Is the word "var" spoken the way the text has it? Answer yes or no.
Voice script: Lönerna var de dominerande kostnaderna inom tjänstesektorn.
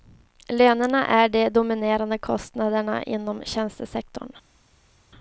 no